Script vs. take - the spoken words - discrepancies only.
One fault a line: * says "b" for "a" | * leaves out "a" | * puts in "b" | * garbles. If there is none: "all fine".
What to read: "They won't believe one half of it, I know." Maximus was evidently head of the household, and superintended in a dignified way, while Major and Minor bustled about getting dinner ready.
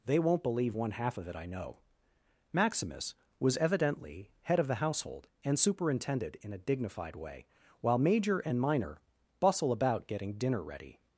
* says "bustle" for "bustled"